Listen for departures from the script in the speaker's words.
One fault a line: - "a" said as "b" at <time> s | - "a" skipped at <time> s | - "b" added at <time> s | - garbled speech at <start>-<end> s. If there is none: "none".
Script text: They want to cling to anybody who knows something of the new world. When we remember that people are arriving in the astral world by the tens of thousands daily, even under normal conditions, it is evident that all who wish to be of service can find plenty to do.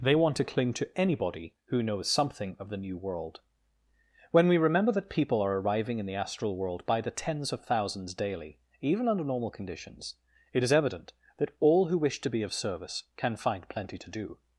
none